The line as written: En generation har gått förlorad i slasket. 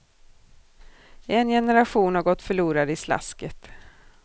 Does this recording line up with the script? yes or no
yes